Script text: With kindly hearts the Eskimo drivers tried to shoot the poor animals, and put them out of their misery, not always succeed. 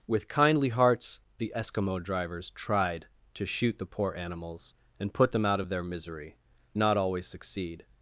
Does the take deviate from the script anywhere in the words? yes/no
no